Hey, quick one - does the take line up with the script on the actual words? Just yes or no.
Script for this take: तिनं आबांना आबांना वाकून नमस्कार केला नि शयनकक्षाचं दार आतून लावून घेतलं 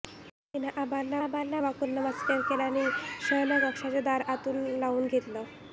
yes